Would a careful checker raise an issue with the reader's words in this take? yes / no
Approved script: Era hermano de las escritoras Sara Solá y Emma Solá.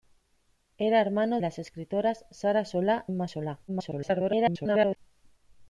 yes